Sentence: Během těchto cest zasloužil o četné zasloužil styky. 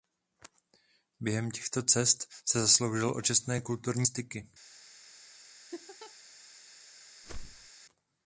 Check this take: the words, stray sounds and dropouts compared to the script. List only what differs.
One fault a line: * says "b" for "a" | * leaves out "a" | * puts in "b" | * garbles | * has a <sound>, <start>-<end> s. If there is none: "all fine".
* puts in "se"
* says "kulturní" for "zasloužil"
* has a laugh, 5.7-6.1 s
* has a whoosh, 7.2-7.7 s